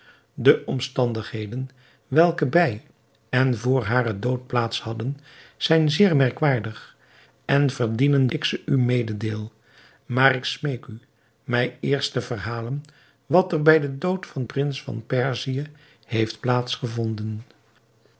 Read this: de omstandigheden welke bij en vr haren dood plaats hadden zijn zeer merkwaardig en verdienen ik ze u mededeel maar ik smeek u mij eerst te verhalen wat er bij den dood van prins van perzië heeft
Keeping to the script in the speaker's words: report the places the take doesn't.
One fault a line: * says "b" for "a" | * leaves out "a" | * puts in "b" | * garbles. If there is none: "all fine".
all fine